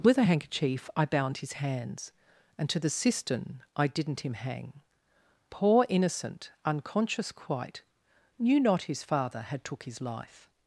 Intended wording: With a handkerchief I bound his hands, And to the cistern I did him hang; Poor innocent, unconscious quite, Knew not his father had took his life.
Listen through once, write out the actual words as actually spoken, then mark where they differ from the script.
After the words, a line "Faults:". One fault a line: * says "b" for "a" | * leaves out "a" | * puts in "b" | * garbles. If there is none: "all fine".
With a handkerchief I bound his hands, And to the cistern I didn't him hang; Poor innocent, unconscious quite, Knew not his father had took his life.
Faults:
* says "didn't" for "did"